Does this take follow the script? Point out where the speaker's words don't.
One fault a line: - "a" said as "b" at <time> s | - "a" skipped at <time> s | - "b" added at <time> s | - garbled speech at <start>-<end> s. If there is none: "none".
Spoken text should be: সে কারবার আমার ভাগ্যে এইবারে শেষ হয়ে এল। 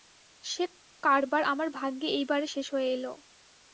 none